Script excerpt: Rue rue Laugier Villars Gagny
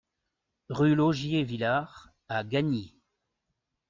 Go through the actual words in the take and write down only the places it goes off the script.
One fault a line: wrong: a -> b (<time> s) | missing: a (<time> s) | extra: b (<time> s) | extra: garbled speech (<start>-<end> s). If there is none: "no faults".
missing: rue (0.9 s)
extra: à (2.3 s)